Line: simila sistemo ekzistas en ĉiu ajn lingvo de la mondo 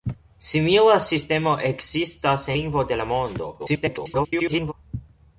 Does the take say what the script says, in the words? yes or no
no